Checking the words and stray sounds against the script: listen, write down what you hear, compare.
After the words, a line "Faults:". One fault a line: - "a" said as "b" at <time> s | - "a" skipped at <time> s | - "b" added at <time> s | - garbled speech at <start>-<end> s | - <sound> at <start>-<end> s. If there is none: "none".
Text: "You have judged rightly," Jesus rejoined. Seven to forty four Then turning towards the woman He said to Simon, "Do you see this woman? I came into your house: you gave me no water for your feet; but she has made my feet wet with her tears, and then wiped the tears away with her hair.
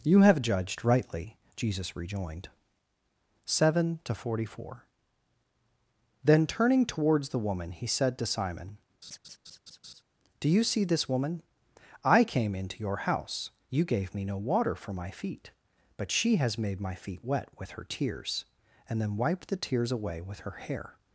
"You have judged rightly," Jesus rejoined. Seven to forty four Then turning towards the woman He said to Simon, "Do you see this woman? I came into your house: you gave me no water for my feet; but she has made my feet wet with her tears, and then wiped the tears away with her hair.
Faults:
- laugh at 9.0-10.0 s
- "your" said as "my" at 14.9 s